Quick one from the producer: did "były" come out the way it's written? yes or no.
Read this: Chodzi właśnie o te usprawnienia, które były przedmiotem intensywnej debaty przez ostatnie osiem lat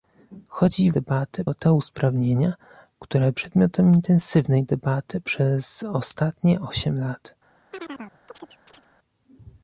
no